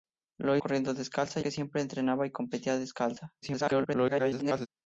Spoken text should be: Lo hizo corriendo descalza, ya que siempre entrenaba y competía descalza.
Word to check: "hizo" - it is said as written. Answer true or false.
false